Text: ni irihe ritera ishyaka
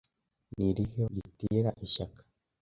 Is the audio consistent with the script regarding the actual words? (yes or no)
yes